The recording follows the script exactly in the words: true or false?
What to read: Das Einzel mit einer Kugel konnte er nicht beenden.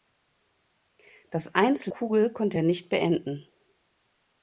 false